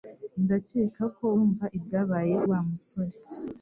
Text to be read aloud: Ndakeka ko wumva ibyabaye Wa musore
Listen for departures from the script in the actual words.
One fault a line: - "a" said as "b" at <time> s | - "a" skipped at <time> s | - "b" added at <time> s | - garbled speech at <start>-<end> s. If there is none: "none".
none